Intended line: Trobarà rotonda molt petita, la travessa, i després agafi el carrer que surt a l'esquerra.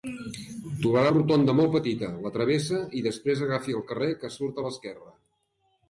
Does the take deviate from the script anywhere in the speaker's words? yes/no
no